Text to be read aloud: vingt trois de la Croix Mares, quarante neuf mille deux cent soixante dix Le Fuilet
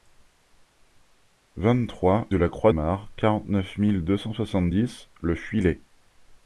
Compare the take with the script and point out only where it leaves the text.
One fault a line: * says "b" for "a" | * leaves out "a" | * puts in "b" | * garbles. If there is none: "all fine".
all fine